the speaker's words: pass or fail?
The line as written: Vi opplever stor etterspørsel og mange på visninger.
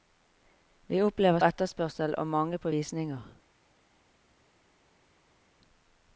fail